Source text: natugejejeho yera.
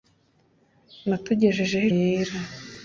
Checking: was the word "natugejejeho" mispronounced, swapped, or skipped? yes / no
no